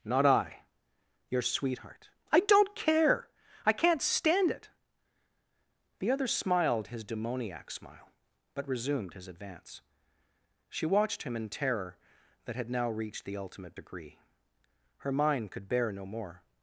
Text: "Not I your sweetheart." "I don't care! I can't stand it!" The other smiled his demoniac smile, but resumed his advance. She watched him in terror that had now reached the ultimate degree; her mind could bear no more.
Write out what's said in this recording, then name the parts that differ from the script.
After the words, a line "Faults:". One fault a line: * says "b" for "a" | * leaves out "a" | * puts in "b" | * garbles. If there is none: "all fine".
"Not I your sweetheart." "I don't care! I can't stand it!" The other smiled his demoniac smile, but resumed his advance. She watched him in terror that had now reached the ultimate degree; her mind could bear no more.
Faults:
all fine